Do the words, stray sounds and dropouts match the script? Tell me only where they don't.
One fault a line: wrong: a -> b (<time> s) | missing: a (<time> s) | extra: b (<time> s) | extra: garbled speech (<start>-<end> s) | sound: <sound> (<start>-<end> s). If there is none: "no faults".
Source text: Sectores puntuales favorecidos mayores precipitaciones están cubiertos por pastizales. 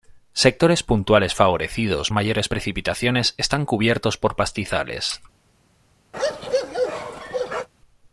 sound: bark (6.1-7.7 s)